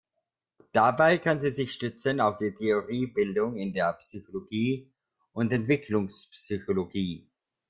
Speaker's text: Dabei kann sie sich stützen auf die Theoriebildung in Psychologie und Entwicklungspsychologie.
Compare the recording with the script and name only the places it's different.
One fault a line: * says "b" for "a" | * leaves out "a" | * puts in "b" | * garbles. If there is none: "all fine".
* puts in "der"